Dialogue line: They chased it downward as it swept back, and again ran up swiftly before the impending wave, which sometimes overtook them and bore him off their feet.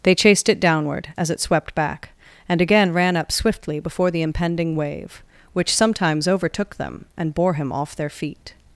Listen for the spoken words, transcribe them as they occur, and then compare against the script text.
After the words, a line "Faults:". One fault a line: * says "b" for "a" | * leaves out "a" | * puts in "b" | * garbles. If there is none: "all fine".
They chased it downward as it swept back, and again ran up swiftly before the impending wave, which sometimes overtook them and bore him off their feet.
Faults:
all fine